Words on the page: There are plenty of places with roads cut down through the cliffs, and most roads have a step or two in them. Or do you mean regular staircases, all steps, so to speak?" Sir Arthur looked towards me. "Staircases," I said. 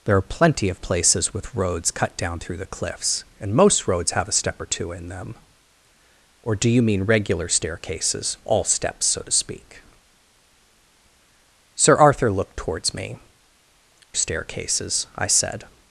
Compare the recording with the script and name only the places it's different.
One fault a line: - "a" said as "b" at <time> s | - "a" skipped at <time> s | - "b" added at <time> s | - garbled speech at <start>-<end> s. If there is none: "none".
none